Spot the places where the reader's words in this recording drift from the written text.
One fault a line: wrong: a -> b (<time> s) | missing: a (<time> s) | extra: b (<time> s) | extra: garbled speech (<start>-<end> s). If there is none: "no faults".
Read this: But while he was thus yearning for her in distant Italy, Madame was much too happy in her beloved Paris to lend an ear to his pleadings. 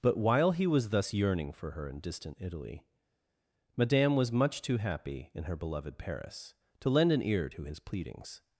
no faults